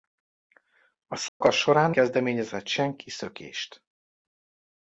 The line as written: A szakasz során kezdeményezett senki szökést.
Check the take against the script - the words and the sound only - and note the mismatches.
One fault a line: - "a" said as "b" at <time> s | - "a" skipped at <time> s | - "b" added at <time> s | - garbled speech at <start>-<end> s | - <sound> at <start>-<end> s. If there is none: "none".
- dropout at 1.3-1.4 s